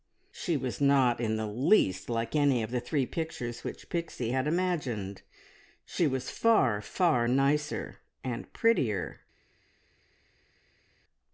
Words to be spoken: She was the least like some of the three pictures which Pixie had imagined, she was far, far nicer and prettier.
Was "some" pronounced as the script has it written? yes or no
no